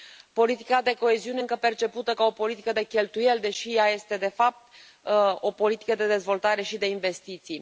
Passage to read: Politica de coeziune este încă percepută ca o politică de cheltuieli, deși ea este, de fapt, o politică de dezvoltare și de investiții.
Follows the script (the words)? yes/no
no